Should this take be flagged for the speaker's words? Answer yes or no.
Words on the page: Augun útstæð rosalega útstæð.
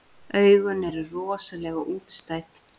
yes